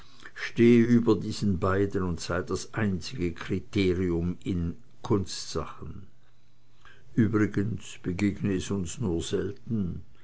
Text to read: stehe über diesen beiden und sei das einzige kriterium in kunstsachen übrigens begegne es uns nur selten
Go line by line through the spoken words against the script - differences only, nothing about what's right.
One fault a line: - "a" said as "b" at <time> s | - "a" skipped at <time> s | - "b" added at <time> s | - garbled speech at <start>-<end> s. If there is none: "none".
none